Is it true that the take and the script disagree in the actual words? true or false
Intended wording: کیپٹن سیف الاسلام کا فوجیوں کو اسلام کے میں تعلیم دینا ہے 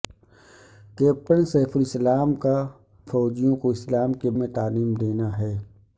false